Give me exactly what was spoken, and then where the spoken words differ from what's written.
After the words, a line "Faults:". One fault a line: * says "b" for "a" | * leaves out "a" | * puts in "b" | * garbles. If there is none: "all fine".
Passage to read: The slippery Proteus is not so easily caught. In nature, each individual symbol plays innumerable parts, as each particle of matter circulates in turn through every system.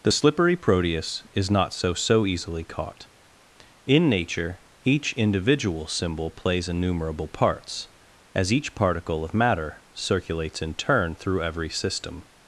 The slippery Proteus is not so so easily caught. In nature, each individual symbol plays innumerable parts, as each particle of matter circulates in turn through every system.
Faults:
* puts in "so"